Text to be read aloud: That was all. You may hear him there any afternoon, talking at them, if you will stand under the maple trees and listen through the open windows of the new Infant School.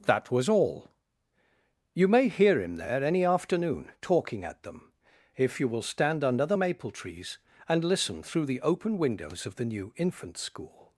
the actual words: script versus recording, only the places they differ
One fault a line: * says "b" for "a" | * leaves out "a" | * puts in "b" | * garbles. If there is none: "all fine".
all fine